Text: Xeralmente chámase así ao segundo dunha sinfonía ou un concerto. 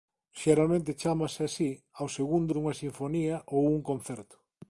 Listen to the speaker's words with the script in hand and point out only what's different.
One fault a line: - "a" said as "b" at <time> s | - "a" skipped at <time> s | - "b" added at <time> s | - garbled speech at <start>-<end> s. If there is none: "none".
none